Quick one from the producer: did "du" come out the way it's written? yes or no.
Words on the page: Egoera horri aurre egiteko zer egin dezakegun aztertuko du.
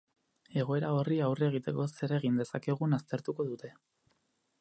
no